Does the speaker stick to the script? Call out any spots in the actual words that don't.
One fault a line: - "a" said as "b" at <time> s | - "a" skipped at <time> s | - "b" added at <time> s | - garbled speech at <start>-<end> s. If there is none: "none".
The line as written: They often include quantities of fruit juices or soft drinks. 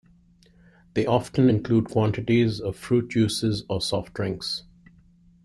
none